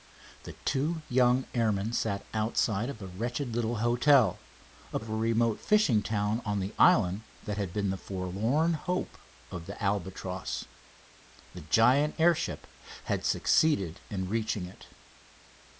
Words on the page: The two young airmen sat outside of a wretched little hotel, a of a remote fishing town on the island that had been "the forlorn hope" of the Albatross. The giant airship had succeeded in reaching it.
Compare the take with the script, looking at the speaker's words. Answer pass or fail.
pass